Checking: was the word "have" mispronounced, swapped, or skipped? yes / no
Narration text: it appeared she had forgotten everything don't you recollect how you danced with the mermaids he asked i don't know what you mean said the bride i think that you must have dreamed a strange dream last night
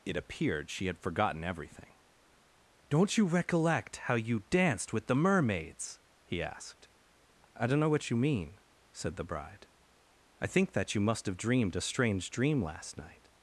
no